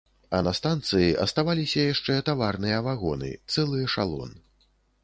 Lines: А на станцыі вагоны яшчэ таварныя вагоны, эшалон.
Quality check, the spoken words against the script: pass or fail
fail